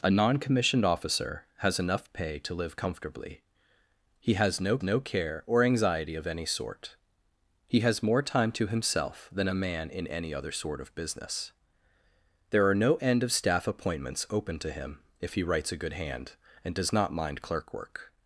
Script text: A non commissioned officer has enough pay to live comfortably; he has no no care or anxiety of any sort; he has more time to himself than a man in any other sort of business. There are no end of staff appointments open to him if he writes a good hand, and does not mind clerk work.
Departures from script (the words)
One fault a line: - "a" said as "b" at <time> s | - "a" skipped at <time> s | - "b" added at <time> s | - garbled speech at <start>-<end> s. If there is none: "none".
none